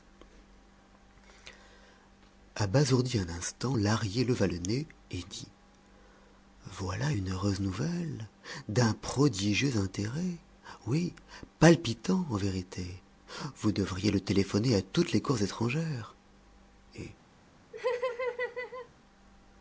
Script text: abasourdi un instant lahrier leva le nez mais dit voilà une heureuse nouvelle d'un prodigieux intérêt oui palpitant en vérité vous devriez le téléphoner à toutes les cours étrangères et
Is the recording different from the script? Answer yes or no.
yes